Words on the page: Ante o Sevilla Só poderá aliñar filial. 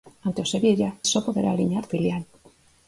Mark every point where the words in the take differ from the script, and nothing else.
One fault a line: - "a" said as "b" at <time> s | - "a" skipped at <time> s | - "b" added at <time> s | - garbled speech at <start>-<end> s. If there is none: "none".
none